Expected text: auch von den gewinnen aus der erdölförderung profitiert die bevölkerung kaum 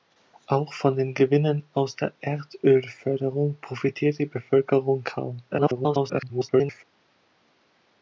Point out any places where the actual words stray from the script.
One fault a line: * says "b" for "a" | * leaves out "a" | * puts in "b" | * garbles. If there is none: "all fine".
* garbles